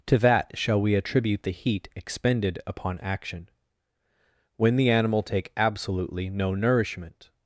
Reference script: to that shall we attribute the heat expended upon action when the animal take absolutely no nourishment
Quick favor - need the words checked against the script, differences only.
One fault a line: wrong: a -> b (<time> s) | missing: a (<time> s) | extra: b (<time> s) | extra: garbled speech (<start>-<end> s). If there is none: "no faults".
no faults